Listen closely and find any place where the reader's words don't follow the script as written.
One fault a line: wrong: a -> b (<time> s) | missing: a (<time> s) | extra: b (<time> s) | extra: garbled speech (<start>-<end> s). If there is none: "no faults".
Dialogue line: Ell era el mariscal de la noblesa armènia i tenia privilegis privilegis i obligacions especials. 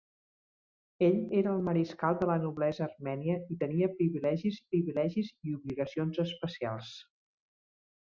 no faults